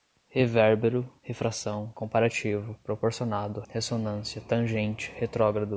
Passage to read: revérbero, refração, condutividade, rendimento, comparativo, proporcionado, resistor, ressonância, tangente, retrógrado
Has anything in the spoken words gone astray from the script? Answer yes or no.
yes